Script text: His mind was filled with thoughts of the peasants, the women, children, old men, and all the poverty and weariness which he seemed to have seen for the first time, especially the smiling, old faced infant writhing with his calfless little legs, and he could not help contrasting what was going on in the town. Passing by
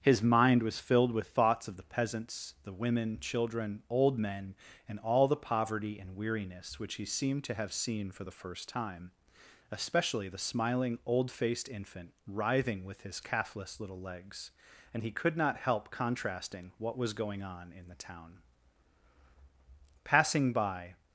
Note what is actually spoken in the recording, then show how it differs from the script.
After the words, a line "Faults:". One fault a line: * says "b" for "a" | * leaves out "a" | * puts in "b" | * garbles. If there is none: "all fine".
His mind was filled with thoughts of the peasants, the women, children, old men, and all the poverty and weariness which he seemed to have seen for the first time, especially the smiling, old faced infant writhing with his calfless little legs, and he could not help contrasting what was going on in the town. Passing by
Faults:
all fine